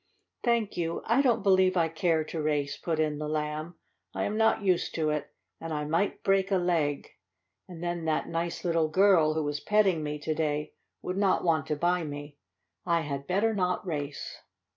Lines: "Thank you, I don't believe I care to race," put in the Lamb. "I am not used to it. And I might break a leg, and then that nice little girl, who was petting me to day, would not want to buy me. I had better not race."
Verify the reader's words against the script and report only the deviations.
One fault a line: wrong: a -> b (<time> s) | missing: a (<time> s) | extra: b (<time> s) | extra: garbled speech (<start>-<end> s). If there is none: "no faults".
no faults